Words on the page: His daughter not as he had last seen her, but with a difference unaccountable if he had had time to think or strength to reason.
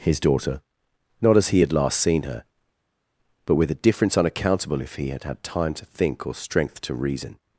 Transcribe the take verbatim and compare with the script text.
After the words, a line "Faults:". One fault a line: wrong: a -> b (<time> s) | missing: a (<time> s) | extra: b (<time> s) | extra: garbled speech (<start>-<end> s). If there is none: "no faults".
His daughter not as he had last seen her, but with a difference unaccountable if he had had time to think or strength to reason.
Faults:
no faults